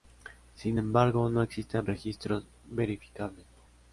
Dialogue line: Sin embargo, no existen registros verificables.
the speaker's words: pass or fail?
pass